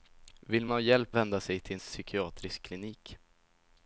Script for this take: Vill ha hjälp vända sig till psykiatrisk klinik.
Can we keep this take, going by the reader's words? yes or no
yes